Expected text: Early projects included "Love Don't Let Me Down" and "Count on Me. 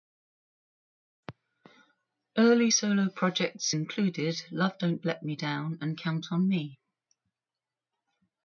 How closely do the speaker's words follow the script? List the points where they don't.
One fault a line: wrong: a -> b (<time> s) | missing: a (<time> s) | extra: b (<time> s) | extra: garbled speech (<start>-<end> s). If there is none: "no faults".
extra: solo (2.7 s)